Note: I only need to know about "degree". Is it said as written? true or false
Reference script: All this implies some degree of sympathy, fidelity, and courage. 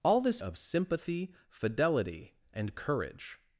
false